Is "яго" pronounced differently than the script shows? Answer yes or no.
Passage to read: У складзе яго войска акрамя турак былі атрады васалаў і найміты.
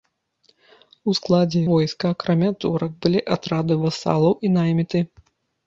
yes